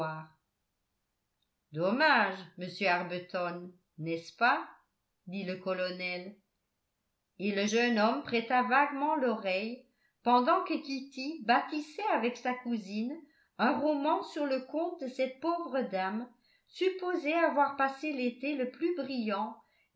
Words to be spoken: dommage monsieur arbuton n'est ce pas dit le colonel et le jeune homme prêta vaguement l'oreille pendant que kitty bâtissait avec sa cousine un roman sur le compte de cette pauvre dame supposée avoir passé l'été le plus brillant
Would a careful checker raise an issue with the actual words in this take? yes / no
no